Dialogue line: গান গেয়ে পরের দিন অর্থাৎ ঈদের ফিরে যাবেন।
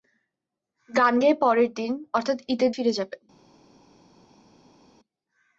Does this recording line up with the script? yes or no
yes